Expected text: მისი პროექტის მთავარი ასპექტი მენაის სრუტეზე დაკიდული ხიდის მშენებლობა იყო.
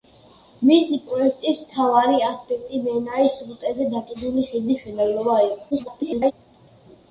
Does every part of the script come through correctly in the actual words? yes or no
no